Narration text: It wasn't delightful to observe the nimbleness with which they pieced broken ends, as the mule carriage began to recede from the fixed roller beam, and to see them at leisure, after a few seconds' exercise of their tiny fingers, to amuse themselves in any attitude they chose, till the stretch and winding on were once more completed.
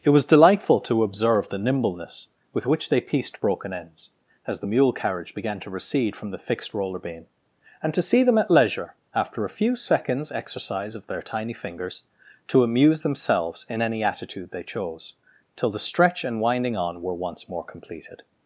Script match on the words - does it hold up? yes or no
no